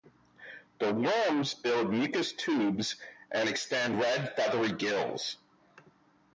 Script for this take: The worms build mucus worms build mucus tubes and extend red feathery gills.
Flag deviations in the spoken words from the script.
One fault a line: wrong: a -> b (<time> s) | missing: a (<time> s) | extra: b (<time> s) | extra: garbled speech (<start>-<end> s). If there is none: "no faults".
missing: worms build mucus (2.3 s)